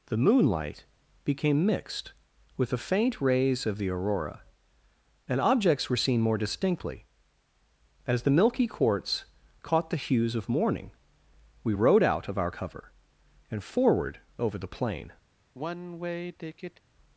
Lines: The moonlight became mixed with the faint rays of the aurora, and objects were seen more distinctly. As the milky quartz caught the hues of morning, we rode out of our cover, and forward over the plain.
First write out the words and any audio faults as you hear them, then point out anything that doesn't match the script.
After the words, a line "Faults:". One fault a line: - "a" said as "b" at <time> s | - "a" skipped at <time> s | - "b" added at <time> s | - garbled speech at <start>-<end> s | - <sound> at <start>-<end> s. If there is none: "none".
The moonlight became mixed with the faint rays of the aurora, and objects were seen more distinctly. As the milky quartz caught the hues of morning, we rode out of our cover, and forward over the plain.
Faults:
- sigh at 15.5-16.8 s